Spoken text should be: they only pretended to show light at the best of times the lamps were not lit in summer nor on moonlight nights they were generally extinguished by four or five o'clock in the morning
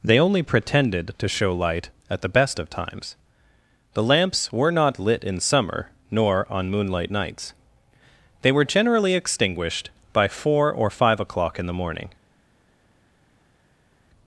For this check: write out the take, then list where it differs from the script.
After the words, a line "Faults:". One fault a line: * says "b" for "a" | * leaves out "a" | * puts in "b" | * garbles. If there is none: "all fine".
they only pretended to show light at the best of times the lamps were not lit in summer nor on moonlight nights they were generally extinguished by four or five o'clock in the morning
Faults:
all fine